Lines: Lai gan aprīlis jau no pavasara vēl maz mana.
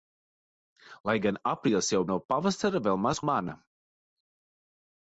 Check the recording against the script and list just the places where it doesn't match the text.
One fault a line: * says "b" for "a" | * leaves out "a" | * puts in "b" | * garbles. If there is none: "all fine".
all fine